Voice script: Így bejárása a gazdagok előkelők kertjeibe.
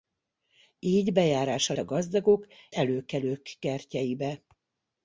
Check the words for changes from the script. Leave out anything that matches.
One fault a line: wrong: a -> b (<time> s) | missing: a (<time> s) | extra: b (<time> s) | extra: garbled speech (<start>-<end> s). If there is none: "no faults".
no faults